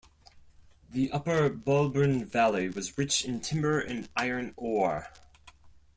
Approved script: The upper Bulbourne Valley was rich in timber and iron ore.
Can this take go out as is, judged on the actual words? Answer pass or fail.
pass